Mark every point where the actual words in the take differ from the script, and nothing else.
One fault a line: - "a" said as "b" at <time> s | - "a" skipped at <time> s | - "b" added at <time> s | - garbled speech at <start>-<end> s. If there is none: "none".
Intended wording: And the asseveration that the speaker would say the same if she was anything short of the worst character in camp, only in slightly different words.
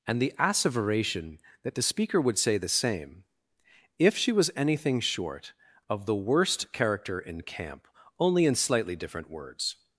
none